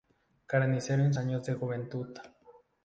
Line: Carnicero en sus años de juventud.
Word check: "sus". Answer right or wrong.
wrong